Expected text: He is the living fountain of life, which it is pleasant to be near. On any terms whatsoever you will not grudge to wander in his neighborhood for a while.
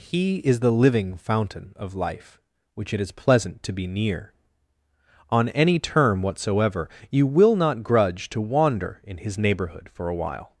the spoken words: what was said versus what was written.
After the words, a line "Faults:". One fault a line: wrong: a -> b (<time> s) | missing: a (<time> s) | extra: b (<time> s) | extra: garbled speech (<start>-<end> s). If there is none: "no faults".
He is the living fountain of life, which it is pleasant to be near. On any term whatsoever you will not grudge to wander in his neighborhood for a while.
Faults:
wrong: terms -> term (5.8 s)